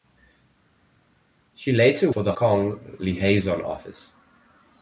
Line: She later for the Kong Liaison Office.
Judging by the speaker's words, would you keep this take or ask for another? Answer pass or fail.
pass